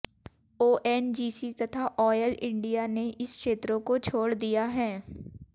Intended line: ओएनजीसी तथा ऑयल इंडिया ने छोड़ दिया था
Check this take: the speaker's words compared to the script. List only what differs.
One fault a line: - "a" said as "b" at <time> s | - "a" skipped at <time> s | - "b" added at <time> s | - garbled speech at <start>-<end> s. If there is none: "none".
- "इन क्षेत्रों को" added at 3.1 s
- "था" said as "है" at 4.8 s